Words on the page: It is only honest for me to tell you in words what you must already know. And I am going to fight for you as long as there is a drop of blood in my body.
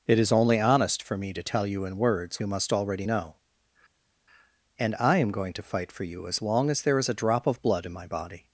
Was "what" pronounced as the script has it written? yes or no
no